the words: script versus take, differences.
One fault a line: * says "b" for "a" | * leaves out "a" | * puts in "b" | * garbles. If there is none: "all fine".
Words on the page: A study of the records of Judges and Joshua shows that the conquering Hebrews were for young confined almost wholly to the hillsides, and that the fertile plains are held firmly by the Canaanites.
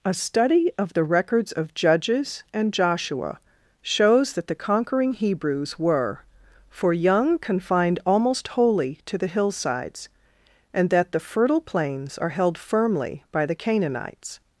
all fine